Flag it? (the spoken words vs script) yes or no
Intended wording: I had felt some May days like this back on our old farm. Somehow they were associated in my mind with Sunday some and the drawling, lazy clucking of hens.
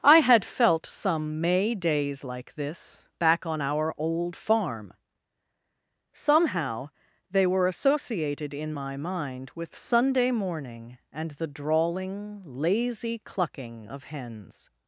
yes